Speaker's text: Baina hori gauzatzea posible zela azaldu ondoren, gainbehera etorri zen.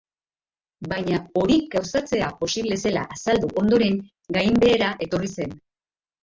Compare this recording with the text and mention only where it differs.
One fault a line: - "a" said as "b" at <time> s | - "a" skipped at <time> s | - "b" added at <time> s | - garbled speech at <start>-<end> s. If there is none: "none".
none